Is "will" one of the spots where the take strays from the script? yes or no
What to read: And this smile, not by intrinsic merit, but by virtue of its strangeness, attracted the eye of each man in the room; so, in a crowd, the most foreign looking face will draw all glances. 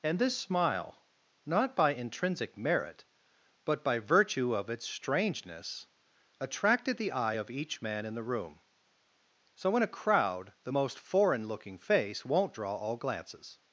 yes